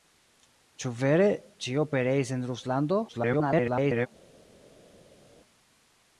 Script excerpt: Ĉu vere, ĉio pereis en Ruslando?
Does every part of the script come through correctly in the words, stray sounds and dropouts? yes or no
no